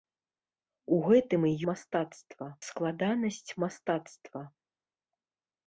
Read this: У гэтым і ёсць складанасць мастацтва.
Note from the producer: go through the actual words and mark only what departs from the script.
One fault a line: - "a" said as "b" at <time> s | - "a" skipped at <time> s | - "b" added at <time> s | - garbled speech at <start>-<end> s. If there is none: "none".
- "ёсць" said as "мастацтва" at 1.7 s